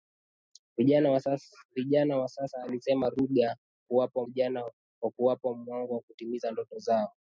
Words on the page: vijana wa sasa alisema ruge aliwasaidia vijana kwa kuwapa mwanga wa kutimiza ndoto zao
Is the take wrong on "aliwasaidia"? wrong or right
wrong